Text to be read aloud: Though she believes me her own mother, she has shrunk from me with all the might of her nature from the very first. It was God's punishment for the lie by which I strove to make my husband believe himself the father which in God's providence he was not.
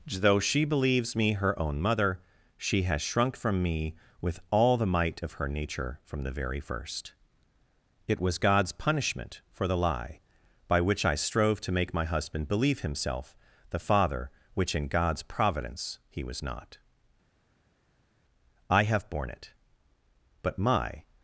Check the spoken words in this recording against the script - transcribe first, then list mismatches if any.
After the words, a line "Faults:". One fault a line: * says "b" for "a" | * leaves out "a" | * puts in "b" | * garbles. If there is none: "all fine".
Though she believes me her own mother, she has shrunk from me with all the might of her nature from the very first. It was God's punishment for the lie by which I strove to make my husband believe himself the father which in God's providence he was not. I have borne it; but my
Faults:
* puts in "I have borne it but my"